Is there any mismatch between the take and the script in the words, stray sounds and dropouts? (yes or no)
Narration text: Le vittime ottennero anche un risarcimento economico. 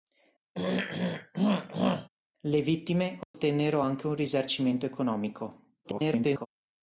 yes